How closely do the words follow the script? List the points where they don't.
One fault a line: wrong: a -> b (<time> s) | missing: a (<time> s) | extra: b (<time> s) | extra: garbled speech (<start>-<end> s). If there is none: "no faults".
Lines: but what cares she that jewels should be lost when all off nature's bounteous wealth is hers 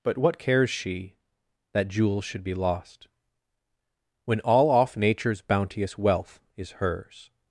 no faults